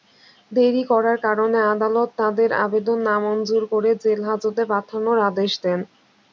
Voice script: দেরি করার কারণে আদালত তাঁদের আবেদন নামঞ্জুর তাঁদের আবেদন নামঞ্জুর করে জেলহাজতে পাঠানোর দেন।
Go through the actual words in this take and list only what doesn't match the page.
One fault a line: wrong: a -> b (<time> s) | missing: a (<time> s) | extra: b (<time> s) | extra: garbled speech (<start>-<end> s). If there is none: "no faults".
missing: তাঁদের আবেদন নামঞ্জুর (3.6 s)
extra: আদেশ (5.3 s)